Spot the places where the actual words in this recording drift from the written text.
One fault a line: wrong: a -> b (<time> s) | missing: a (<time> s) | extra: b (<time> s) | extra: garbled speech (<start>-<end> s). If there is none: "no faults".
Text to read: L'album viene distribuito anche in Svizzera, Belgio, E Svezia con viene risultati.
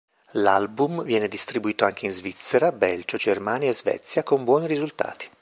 extra: Germania (3.1 s)
wrong: viene -> buoni (4.4 s)